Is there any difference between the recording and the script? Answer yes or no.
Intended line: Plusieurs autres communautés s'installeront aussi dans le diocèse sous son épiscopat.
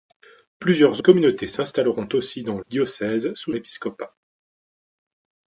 yes